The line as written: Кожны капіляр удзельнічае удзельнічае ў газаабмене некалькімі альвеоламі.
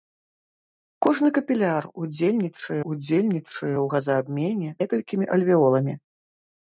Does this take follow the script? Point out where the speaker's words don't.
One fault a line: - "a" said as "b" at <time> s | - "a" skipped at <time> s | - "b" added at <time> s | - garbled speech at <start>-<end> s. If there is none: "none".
none